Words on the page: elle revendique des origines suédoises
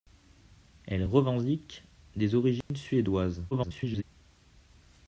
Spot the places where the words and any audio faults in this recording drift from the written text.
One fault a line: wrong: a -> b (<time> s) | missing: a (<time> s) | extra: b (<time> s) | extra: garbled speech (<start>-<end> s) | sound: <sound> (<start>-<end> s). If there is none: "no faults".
sound: dropout (2.6-2.7 s)
extra: garbled speech (3.5-4.0 s)